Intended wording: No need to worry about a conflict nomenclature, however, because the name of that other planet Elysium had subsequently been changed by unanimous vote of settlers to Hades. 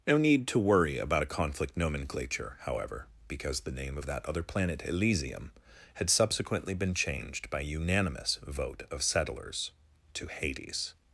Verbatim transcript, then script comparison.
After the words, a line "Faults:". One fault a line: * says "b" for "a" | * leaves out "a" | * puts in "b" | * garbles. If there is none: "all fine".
No need to worry about a conflict nomenclature, however, because the name of that other planet Elysium had subsequently been changed by unanimous vote of settlers to Hades.
Faults:
all fine